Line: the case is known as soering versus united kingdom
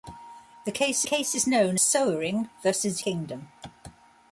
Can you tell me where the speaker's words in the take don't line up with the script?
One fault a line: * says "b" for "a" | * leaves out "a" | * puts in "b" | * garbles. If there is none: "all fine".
* puts in "case"
* leaves out "as"
* leaves out "united"